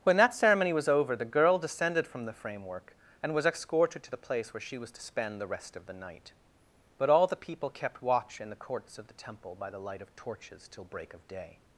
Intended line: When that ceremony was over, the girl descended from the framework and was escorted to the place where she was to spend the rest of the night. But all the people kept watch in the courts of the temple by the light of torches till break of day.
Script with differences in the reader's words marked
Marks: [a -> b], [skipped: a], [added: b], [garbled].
When that ceremony was over, the girl descended from the framework and was escorted to the place where she was to spend the rest of the night. But all the people kept watch in the courts of the temple by the light of torches till break of day.